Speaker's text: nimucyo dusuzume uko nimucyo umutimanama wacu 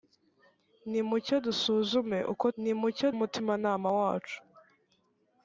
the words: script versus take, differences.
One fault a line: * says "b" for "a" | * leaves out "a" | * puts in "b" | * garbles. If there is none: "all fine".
all fine